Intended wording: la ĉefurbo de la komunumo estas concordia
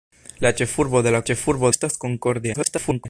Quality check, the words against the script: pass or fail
fail